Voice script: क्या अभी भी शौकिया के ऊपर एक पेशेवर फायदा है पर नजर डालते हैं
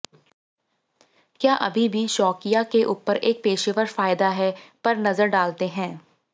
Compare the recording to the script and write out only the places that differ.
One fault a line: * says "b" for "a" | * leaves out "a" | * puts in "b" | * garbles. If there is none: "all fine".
all fine